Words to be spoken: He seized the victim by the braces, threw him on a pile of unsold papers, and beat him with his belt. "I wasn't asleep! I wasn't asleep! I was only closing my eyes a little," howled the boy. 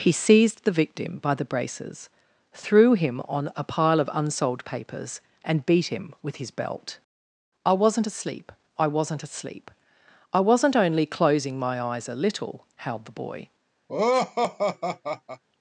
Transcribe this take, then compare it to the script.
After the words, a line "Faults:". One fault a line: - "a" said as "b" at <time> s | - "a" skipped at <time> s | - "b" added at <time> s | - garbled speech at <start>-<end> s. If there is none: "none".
He seized the victim by the braces, threw him on a pile of unsold papers, and beat him with his belt. "I wasn't asleep! I wasn't asleep! I wasn't only closing my eyes a little," howled the boy.
Faults:
- "was" said as "wasn't" at 10.4 s